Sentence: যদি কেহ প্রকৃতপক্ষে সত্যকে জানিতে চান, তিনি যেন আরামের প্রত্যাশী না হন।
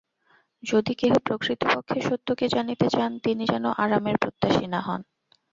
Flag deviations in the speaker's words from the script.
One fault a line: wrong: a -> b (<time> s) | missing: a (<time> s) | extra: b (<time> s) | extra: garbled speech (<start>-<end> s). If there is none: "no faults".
no faults